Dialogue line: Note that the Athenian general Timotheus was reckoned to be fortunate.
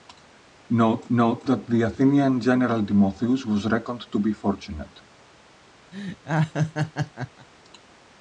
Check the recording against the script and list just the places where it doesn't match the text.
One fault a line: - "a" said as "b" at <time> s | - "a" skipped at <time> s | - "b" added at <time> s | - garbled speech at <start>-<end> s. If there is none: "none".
- "note" added at 1.1 s